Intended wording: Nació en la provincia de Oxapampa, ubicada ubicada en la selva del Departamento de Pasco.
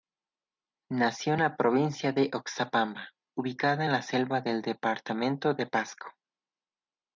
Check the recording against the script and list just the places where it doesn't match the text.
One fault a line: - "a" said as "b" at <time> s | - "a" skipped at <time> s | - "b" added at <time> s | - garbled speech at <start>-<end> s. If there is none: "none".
- "ubicada" skipped at 3.8 s